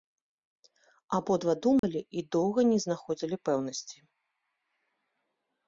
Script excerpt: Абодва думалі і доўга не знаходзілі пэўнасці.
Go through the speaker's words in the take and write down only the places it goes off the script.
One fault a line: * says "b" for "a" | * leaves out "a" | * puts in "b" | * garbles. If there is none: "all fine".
all fine